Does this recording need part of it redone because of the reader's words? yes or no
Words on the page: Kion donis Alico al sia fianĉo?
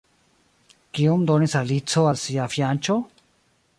no